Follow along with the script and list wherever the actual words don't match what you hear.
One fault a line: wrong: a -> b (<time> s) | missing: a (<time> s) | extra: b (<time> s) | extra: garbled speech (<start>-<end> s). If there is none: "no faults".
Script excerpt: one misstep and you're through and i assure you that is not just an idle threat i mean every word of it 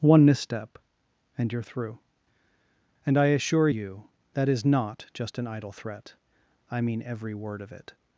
no faults